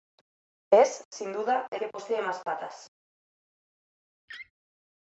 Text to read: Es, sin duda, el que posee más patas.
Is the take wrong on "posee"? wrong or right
right